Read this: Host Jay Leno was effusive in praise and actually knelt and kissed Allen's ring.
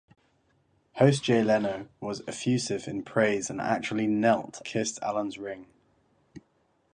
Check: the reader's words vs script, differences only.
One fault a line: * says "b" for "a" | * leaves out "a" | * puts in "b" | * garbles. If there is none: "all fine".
* leaves out "and"